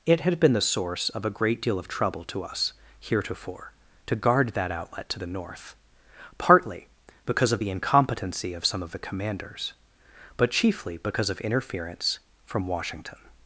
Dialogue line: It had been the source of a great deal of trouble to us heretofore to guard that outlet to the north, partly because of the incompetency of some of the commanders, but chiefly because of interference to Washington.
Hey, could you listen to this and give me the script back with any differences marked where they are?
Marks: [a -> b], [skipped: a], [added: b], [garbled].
It had been the source of a great deal of trouble to us heretofore to guard that outlet to the north, partly because of the incompetency of some of the commanders, but chiefly because of interference [to -> from] Washington.